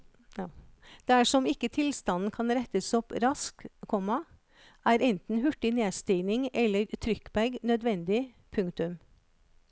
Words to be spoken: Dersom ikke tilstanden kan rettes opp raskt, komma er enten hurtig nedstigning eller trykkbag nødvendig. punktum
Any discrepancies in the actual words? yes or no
no